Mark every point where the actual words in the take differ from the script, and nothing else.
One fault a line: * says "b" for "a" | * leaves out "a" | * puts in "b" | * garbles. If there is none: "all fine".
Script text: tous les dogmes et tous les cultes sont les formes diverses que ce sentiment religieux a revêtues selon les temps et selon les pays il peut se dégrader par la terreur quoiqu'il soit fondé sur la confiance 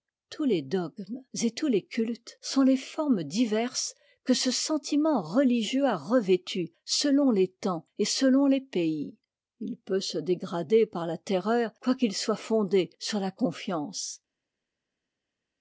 all fine